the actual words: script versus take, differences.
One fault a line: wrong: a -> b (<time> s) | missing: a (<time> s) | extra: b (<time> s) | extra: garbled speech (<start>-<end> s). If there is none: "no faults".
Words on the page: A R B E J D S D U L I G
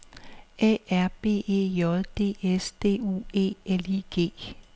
extra: E (3.3 s)